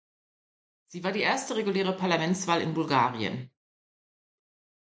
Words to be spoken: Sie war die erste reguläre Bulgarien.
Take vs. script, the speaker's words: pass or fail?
fail